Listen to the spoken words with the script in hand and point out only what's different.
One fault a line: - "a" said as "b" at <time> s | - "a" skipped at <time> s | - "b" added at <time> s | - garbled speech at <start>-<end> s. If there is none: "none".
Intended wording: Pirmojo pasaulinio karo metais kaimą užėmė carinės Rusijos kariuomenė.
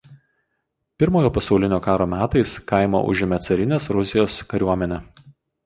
none